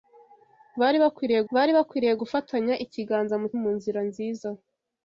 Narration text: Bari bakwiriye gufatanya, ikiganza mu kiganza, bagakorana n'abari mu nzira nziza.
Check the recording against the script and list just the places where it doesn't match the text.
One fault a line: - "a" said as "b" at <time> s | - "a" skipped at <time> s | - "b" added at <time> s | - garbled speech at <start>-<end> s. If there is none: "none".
- "bari bakwiriye" added at 1.5 s
- "kiganza bagakorana n'abari" skipped at 3.5 s